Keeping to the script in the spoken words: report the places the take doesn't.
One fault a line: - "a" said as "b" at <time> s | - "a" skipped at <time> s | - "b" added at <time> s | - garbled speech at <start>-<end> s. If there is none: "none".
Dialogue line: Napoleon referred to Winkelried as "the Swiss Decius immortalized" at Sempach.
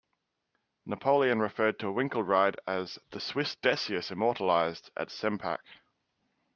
none